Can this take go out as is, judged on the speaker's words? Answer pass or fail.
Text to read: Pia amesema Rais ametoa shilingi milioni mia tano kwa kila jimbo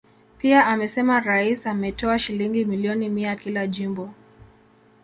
fail